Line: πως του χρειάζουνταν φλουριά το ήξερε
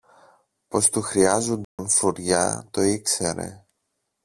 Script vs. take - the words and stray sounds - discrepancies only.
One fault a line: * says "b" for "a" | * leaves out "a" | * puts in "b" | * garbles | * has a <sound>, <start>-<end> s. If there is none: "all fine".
* has a dropout, 1.6-1.8 s